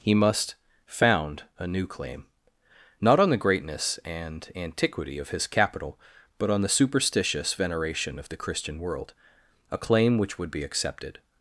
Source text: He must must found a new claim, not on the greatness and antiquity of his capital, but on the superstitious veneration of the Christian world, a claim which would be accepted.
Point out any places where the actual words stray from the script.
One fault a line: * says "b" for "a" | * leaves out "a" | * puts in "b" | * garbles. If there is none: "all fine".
* leaves out "must"